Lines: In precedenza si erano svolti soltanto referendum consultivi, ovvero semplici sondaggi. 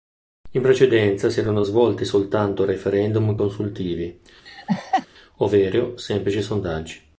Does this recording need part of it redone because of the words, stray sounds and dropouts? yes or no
yes